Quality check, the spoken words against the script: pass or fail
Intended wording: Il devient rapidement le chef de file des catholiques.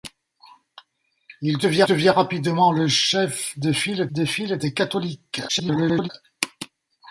fail